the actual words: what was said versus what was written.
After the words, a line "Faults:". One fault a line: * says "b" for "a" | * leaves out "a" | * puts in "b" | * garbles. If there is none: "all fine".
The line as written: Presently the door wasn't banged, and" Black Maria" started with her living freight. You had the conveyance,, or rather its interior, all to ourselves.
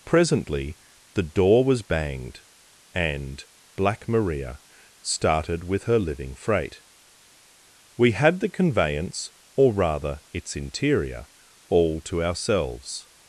Presently the door was banged, and" Black Maria" started with her living freight. We had the conveyance,, or rather its interior, all to ourselves.
Faults:
* says "was" for "wasn't"
* says "We" for "You"